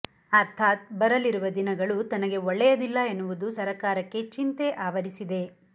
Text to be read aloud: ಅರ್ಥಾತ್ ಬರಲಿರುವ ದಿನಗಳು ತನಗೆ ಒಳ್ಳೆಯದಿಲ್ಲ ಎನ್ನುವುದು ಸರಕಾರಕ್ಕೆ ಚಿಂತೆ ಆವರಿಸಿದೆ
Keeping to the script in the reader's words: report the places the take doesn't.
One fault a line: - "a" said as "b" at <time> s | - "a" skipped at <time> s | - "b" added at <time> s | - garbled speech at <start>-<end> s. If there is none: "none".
none